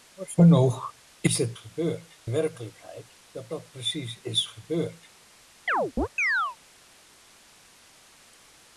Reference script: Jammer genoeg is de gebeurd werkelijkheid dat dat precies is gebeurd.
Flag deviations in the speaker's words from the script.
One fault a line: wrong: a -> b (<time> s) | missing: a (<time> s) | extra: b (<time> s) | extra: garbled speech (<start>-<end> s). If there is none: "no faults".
no faults